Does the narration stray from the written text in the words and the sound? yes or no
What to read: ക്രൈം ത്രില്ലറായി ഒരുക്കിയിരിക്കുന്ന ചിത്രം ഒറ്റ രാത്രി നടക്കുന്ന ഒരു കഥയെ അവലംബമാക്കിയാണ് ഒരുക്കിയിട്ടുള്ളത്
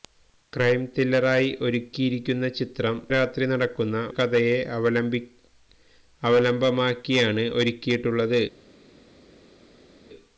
yes